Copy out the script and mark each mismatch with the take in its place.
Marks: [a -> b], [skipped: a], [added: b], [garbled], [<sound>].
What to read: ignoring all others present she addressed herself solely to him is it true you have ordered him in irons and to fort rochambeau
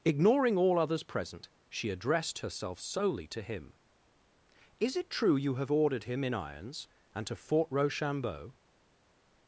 ignoring all others present she addressed herself solely to him is it true you have ordered him in irons and to fort rochambeau